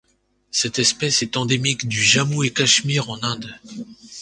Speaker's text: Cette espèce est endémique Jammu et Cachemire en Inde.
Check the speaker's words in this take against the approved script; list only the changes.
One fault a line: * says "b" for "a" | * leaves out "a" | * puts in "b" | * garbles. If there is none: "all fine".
* puts in "du"